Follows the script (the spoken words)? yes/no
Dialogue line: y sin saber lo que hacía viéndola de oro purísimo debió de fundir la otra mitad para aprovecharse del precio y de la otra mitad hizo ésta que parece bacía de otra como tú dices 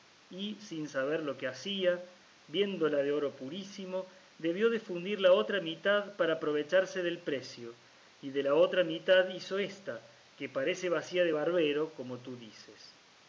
no